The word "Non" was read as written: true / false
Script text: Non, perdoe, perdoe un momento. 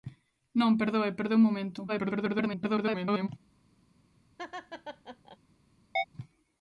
true